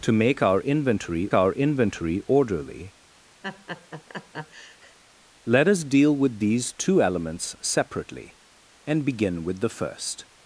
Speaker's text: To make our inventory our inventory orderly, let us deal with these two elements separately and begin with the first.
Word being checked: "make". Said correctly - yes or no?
yes